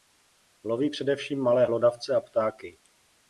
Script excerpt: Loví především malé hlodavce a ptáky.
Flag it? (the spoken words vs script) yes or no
no